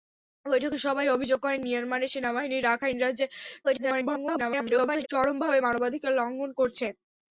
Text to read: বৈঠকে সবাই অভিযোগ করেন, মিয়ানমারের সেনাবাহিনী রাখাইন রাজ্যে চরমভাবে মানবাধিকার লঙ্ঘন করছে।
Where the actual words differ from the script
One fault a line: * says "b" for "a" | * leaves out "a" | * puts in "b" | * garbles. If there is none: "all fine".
* garbles